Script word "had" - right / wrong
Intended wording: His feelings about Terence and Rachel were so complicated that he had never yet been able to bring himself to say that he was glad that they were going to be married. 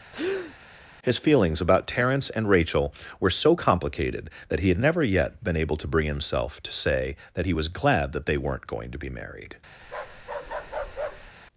right